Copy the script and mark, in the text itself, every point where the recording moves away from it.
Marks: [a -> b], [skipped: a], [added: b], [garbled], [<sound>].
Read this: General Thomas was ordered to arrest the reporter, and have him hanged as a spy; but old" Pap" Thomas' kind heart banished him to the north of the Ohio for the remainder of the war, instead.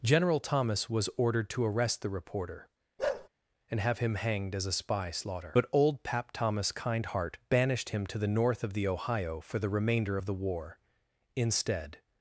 General Thomas was ordered to arrest the reporter, [bark] and have him hanged as a spy; [added: slaughter] but old" Pap" Thomas' kind heart banished him to the north of the Ohio for the remainder of the war, instead.